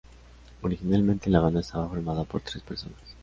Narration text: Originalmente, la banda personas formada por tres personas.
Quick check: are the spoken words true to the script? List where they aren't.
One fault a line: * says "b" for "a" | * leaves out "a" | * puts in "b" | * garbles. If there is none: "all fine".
* says "estaba" for "personas"